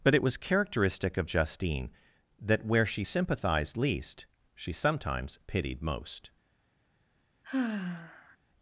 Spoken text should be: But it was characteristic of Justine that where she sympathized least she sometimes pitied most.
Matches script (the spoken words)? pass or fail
pass